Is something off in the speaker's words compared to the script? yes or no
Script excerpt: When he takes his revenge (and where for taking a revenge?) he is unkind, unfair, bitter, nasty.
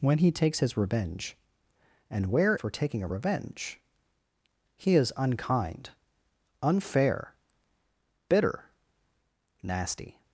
no